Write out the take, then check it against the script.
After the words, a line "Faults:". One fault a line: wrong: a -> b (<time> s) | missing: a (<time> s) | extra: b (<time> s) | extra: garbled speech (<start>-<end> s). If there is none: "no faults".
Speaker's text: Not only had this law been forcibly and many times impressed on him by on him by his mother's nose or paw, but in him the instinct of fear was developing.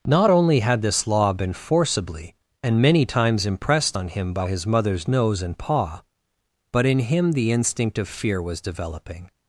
Not only had this law been forcibly and many times impressed on him by his mother's nose and paw, but in him the instinct of fear was developing.
Faults:
missing: on him by (4.5 s)
wrong: or -> and (5.4 s)